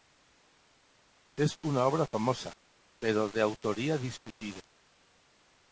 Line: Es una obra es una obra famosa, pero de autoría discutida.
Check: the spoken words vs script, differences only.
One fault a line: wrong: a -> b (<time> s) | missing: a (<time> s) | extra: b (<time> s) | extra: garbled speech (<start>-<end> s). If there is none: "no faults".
missing: es una obra (2.0 s)